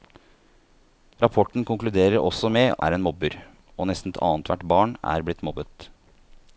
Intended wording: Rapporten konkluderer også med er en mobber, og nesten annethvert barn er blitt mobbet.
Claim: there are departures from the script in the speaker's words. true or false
false